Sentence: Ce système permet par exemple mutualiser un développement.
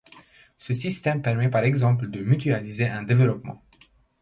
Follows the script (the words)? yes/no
no